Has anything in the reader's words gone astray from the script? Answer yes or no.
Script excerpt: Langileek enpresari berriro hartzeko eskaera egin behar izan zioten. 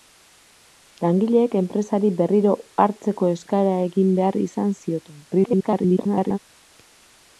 yes